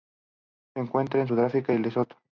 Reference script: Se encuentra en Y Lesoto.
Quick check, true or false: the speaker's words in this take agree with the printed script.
false